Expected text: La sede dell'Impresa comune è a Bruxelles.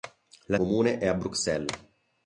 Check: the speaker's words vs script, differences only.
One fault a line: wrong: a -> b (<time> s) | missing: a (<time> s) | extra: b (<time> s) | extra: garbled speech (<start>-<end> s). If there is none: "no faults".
missing: sede dell'Impresa (0.6 s)